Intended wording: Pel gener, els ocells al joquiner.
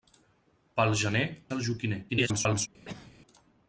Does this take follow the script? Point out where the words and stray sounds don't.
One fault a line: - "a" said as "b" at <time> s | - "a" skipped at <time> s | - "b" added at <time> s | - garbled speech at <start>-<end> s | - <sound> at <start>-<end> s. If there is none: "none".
- "els ocells" skipped at 1.2 s
- garbled speech at 2.1-2.7 s
- cough at 2.8-3.1 s